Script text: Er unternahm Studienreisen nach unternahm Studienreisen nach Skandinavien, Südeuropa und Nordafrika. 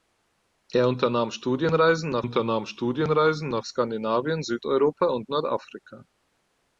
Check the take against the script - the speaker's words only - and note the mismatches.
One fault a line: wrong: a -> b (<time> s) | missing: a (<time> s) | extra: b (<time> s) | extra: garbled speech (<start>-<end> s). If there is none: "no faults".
no faults